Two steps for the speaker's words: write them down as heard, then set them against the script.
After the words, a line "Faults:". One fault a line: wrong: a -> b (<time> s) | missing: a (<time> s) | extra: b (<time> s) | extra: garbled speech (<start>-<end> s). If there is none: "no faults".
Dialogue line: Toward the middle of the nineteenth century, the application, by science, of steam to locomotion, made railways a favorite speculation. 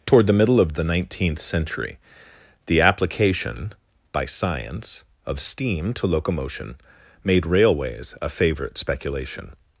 Toward the middle of the nineteenth century, the application, by science, of steam to locomotion, made railways a favorite speculation.
Faults:
no faults